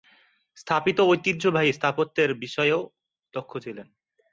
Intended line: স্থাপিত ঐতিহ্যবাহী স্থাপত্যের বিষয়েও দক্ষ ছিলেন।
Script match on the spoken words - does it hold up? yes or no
yes